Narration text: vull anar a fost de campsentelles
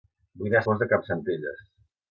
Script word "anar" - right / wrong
right